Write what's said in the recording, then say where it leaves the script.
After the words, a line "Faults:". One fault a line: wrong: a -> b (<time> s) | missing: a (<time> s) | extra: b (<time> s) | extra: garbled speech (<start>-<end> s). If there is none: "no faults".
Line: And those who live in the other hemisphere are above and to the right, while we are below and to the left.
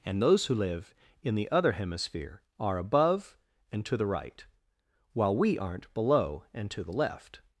And those who live in the other hemisphere are above and to the right, while we aren't below and to the left.
Faults:
wrong: are -> aren't (5.6 s)